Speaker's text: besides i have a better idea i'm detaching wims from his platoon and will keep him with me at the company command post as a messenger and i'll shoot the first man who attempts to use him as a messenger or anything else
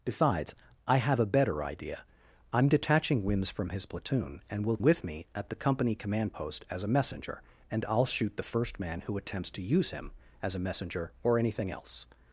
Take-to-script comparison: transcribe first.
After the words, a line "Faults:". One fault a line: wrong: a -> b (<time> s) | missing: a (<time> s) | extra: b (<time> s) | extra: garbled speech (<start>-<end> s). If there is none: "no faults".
besides i have a better idea i'm detaching wims from his platoon and will with me at the company command post as a messenger and i'll shoot the first man who attempts to use him as a messenger or anything else
Faults:
missing: keep him (4.8 s)